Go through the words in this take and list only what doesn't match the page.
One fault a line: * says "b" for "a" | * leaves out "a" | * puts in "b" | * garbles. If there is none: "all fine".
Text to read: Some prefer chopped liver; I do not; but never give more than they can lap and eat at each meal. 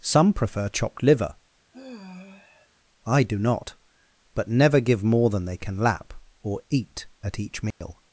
* says "or" for "and"